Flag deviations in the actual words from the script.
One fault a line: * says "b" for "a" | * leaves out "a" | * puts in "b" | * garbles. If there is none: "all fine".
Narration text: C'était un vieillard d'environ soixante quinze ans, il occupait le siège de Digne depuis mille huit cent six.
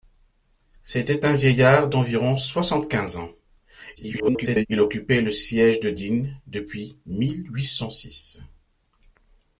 * garbles